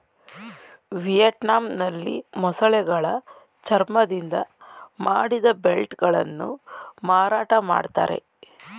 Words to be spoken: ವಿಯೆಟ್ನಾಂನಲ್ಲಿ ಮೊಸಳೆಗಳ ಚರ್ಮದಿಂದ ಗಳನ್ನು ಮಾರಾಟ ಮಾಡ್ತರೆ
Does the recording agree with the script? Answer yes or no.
no